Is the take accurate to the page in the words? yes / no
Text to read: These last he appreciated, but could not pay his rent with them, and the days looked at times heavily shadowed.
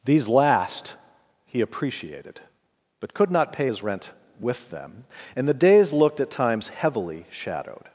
yes